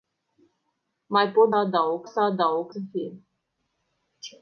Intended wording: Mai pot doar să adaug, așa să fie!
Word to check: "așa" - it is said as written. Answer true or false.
false